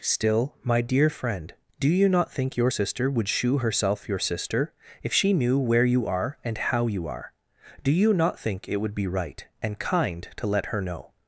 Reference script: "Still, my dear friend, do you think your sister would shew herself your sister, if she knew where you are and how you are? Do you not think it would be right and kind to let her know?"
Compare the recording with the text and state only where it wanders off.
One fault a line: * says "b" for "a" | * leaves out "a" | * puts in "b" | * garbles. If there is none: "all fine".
* puts in "not"